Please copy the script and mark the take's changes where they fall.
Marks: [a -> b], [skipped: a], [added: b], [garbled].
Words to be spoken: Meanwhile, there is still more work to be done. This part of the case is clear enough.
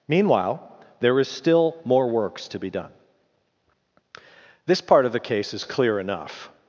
Meanwhile, there is still more [work -> works] to be done. This part of the case is clear enough.